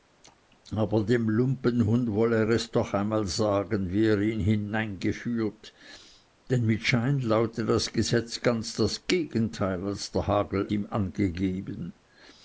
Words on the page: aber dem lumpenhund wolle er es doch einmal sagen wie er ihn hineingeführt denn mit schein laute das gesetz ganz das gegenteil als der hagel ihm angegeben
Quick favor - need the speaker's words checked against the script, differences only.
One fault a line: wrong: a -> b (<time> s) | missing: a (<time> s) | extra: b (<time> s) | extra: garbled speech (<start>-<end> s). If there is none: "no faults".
no faults